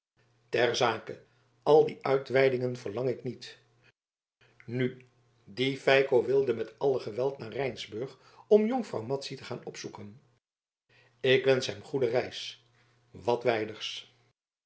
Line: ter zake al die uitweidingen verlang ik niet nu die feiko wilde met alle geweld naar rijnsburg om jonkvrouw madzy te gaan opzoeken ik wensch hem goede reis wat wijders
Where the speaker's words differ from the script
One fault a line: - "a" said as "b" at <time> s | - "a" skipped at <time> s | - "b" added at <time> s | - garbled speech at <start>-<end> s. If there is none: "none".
none